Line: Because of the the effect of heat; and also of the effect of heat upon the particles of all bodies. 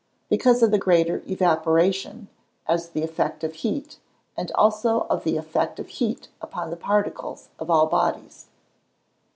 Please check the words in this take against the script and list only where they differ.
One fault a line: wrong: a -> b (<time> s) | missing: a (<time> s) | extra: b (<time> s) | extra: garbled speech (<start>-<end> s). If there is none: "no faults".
extra: greater evaporation as (0.8 s)